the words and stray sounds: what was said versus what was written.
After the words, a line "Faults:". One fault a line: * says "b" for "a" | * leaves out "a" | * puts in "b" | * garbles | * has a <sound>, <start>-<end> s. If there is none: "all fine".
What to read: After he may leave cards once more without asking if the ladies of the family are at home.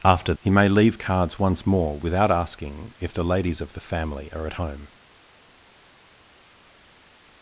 After he may leave cards once more without asking if the ladies of the family are at home.
Faults:
all fine